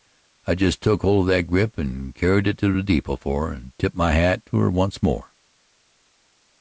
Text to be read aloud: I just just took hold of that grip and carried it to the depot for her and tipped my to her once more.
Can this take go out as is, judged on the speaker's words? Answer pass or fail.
fail